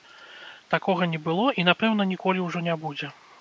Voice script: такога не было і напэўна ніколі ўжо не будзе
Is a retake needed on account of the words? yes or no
no